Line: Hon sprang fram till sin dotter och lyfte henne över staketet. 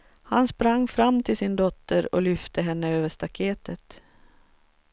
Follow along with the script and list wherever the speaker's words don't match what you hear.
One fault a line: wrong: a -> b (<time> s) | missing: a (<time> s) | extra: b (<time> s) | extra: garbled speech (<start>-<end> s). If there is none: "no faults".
wrong: Hon -> Han (0.2 s)